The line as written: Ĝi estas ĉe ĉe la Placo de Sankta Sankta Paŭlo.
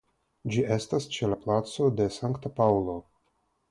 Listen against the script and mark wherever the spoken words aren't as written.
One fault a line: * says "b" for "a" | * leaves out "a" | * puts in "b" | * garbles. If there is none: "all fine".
* leaves out "ĉe"
* leaves out "Sankta"